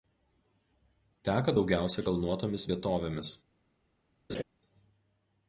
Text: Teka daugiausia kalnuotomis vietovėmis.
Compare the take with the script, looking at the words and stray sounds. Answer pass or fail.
fail